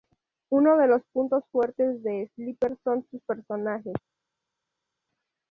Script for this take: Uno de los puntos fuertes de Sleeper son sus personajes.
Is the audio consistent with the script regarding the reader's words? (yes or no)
yes